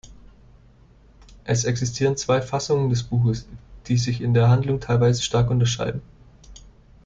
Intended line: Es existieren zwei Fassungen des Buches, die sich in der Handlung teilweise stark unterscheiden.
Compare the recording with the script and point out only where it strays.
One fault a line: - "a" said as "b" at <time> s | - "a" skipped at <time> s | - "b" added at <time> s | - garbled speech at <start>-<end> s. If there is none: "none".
none